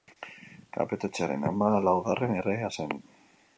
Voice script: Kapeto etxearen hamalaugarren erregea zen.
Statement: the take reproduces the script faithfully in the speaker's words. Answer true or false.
true